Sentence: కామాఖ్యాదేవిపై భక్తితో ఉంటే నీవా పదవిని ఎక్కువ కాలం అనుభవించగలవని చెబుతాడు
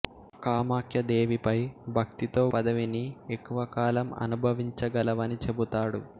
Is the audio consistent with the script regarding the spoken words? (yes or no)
no